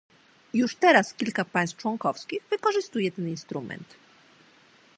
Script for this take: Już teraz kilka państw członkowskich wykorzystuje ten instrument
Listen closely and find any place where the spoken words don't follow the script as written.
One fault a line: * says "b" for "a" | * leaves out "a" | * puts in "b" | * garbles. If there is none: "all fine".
all fine